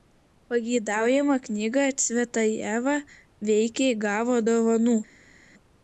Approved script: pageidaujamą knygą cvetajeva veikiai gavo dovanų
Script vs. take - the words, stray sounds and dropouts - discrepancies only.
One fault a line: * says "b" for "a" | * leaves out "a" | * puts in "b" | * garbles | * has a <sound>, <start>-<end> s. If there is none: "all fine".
all fine